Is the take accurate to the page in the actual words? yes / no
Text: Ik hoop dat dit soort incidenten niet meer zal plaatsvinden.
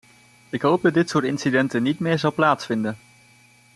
yes